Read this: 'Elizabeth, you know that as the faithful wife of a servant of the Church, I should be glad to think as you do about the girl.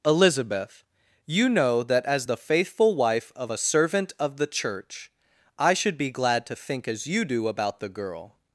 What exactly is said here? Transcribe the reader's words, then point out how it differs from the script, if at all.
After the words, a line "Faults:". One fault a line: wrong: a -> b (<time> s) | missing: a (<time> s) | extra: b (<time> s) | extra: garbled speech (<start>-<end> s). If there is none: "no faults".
'Elizabeth, you know that as the faithful wife of a servant of the Church, I should be glad to think as you do about the girl.
Faults:
no faults